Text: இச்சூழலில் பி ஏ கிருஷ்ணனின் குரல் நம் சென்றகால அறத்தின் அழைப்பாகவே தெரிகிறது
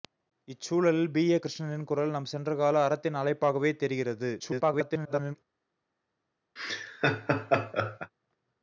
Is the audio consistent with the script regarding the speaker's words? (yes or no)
no